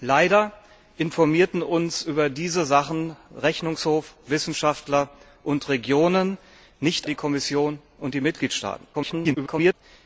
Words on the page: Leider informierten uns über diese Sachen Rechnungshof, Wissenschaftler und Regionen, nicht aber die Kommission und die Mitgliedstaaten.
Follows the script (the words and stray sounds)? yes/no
no